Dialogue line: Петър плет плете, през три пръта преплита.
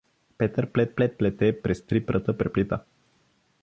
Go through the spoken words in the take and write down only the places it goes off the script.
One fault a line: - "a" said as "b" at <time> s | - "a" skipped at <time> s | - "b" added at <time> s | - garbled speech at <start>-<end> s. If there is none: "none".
- "плет" added at 0.9 s